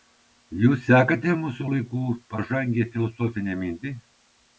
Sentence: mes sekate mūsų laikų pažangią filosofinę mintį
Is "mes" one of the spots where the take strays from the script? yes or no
yes